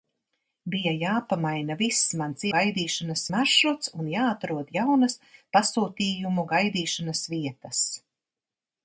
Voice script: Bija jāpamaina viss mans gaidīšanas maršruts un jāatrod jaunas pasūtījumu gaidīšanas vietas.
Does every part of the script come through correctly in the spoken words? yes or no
yes